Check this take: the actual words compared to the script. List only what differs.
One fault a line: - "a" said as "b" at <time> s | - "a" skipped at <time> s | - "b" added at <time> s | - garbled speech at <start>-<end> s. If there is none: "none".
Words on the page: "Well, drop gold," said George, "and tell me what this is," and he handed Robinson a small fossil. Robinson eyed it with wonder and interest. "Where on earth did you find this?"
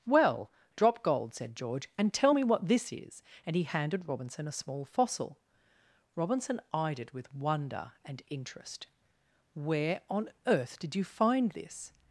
none